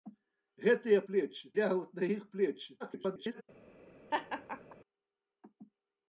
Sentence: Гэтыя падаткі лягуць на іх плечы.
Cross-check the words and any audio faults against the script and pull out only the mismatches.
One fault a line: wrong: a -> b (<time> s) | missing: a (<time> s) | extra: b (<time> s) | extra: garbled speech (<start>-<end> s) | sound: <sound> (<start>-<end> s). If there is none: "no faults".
wrong: падаткі -> плечы (1.1 s)
extra: garbled speech (2.8-3.4 s)
sound: laugh (4.1-4.8 s)